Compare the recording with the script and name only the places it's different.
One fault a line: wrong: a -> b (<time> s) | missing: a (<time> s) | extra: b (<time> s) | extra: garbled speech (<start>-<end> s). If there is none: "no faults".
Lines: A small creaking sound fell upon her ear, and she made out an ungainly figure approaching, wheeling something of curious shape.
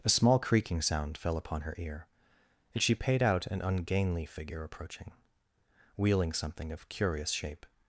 wrong: made -> paid (3.0 s)